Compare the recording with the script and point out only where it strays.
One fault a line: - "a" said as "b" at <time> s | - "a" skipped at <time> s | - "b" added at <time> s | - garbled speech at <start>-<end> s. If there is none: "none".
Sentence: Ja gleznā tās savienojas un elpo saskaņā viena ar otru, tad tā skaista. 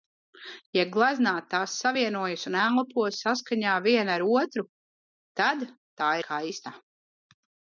none